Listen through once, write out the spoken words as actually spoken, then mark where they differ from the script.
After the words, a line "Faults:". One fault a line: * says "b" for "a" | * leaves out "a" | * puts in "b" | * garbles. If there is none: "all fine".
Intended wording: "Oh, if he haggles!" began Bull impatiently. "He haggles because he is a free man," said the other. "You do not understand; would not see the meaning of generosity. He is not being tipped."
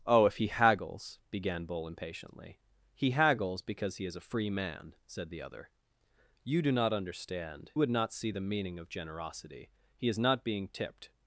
"Oh, if he haggles!" began Bull impatiently. "He haggles because he is a free man," said the other. "You do not understand; would not see the meaning of generosity. He is not being tipped."
Faults:
all fine